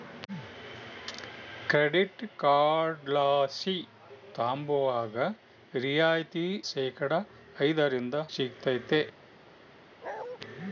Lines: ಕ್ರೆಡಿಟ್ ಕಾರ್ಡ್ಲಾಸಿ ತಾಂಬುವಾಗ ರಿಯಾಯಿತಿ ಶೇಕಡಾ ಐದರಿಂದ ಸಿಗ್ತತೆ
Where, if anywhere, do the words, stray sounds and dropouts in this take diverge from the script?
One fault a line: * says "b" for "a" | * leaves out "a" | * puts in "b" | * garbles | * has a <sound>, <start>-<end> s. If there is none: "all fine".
* has a bark, 10.0-10.4 s